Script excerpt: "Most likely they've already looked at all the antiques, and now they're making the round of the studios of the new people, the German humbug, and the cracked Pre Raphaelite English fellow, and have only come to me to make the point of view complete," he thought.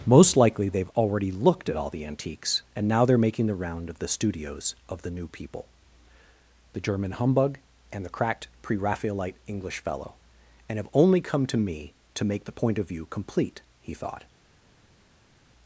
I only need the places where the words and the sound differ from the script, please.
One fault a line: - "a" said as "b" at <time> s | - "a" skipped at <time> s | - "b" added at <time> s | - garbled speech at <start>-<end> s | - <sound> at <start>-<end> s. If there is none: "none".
none